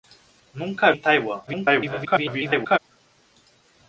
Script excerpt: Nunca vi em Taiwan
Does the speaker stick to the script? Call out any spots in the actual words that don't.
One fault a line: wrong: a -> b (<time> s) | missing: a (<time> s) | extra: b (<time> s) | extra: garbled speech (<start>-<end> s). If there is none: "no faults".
missing: vi (0.9 s)
extra: garbled speech (1.5-2.8 s)